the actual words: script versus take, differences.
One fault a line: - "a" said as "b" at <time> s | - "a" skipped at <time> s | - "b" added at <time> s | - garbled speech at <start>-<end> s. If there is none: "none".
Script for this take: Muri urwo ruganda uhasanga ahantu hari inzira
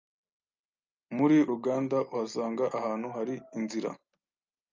- "urwo" skipped at 1.4 s